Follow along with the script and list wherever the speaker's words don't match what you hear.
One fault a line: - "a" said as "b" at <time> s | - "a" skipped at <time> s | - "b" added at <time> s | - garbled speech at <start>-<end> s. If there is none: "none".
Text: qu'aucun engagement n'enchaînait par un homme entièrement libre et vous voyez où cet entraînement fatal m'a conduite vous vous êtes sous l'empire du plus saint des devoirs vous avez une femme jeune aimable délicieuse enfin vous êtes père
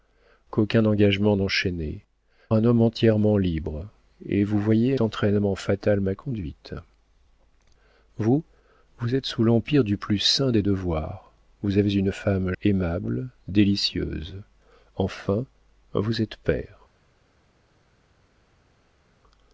- "par" skipped at 2.0 s
- "où cet" skipped at 5.0 s
- "jeune" skipped at 12.5 s